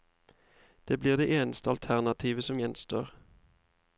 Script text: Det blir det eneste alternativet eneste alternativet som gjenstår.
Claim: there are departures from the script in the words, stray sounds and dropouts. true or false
true